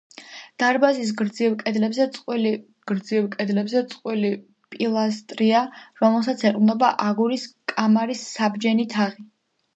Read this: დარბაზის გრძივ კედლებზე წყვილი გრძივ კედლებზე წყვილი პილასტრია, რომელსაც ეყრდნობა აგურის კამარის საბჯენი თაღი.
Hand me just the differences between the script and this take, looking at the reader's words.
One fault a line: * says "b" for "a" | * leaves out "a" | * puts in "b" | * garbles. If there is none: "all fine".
all fine